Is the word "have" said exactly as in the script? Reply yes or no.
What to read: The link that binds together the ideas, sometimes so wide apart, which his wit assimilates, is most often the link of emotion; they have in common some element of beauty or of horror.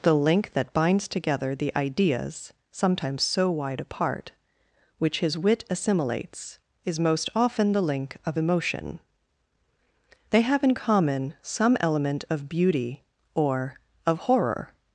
yes